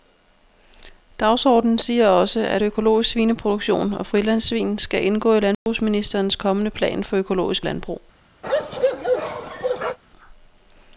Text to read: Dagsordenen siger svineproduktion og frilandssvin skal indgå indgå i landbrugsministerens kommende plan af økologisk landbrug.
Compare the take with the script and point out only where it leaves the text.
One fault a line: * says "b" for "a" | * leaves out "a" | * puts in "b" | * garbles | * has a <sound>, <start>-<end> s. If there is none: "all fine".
* puts in "også at økologisk"
* leaves out "indgå"
* has a dropout, 5.5-5.7 s
* says "for" for "af"
* has a bark, 8.4-10.0 s